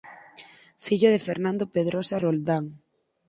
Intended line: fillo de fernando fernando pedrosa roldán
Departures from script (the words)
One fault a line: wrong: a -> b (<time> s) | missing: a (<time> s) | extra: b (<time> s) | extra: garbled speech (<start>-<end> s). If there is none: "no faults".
missing: fernando (1.6 s)